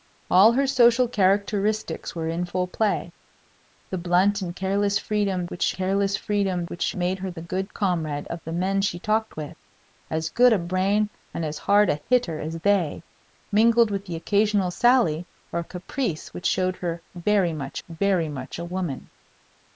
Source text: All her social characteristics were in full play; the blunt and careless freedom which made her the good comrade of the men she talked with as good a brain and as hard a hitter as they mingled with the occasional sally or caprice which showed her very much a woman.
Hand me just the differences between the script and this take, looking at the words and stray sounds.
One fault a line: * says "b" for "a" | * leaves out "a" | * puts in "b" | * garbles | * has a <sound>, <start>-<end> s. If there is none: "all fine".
* puts in "careless freedom which"
* puts in "very much"